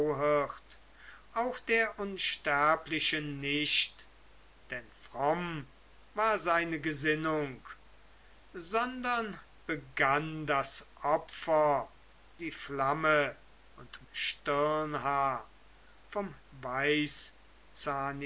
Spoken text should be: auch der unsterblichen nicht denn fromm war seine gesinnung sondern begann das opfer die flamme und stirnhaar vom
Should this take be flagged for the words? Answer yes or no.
no